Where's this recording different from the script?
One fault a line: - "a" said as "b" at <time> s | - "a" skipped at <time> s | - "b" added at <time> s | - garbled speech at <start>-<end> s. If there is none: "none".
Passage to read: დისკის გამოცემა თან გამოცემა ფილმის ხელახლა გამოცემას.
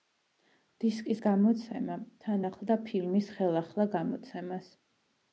- "გამოცემა" said as "ახლდა" at 2.5 s